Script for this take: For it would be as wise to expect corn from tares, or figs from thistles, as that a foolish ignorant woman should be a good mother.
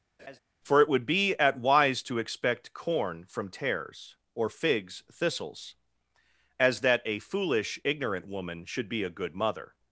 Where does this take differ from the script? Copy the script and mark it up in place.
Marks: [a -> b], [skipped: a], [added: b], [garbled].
For it would be [as -> at] wise to expect corn from tares, or figs [skipped: from] thistles, as that a foolish ignorant woman should be a good mother.